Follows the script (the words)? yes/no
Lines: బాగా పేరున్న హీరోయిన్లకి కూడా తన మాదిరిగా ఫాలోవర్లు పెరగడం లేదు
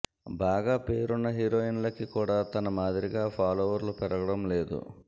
yes